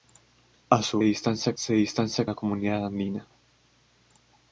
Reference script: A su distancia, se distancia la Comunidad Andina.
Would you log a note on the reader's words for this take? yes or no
no